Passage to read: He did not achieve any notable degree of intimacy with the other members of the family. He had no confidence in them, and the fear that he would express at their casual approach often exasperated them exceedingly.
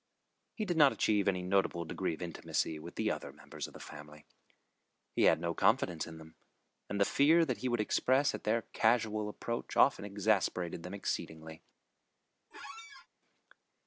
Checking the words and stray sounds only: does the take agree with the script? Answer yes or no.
no